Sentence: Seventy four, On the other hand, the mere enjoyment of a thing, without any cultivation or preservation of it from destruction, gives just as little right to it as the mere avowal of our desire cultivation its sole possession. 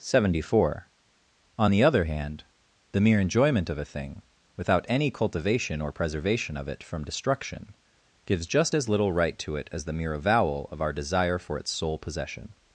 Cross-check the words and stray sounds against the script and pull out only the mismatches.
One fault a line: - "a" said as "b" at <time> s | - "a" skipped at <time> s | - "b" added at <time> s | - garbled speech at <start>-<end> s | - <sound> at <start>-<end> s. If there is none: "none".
- "cultivation" said as "for" at 11.4 s